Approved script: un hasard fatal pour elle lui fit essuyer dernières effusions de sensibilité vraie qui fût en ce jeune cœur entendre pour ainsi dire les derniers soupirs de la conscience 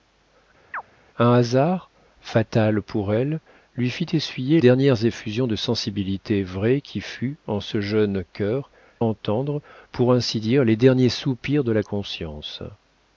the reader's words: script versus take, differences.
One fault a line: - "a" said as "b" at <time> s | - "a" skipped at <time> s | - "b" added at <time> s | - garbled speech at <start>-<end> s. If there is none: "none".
none